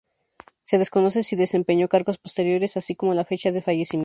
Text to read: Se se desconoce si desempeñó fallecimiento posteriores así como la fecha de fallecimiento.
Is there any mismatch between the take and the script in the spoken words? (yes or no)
yes